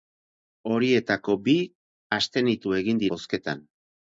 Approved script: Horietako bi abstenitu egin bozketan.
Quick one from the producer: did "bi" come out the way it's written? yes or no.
yes